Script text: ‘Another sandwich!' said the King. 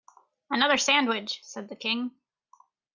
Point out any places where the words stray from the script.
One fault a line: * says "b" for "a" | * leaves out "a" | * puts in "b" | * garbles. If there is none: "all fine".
all fine